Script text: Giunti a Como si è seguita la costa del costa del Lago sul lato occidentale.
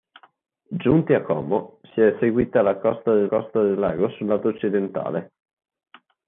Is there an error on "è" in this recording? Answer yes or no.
no